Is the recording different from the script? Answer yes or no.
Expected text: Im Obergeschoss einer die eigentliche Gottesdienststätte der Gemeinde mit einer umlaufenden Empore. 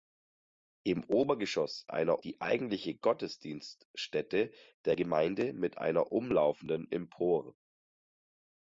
no